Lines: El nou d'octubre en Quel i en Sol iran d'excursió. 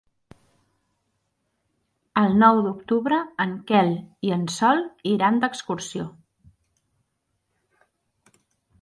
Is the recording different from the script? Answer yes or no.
no